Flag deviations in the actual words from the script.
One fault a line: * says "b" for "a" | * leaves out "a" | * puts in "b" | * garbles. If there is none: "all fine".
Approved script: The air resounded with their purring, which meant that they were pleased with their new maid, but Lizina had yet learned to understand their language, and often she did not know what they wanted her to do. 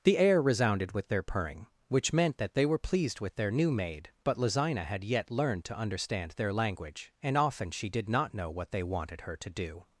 all fine